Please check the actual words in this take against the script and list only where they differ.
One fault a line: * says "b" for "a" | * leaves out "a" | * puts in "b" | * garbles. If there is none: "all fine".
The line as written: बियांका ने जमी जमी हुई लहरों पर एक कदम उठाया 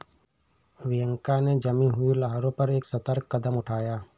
* leaves out "जमी"
* puts in "सतर्क"